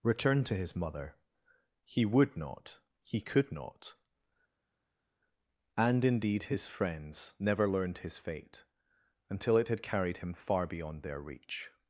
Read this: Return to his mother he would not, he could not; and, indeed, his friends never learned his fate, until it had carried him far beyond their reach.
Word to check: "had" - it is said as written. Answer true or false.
true